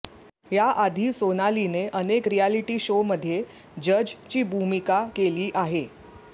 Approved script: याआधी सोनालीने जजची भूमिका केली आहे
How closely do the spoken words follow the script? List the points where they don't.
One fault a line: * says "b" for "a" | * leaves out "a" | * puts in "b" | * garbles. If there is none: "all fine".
* puts in "अनेक रिअॅलिटी शोमध्ये"